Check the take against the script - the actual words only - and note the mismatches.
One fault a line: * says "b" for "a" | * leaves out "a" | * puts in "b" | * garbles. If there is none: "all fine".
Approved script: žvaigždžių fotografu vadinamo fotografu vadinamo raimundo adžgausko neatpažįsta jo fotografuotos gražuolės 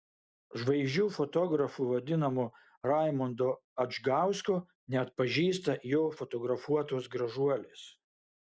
* leaves out "fotografu vadinamo"